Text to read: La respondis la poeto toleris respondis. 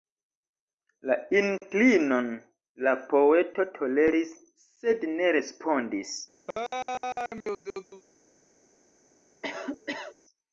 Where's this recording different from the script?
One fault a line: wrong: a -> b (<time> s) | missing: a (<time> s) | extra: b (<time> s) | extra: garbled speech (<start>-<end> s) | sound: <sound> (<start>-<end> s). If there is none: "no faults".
wrong: respondis -> inklinon (1.4 s)
extra: sed ne (4.7 s)
sound: laugh (6.5-8.0 s)
sound: cough (9.4-10.1 s)